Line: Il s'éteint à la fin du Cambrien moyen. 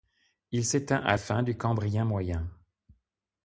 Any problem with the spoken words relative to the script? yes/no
yes